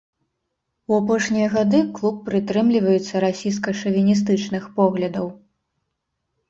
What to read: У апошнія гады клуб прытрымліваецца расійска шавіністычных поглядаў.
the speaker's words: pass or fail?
pass